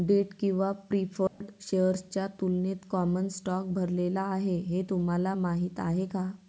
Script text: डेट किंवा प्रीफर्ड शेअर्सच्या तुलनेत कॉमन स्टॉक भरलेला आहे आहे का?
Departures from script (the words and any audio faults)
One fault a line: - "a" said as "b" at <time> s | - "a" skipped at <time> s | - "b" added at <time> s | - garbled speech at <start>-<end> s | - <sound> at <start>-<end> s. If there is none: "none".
- dropout at 1.3-1.4 s
- "हे तुम्हाला माहीत" added at 4.6 s